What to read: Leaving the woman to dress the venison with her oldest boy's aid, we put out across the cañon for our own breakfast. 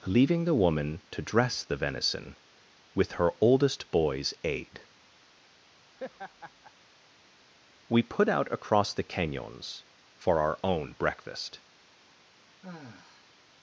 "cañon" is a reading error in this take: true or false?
true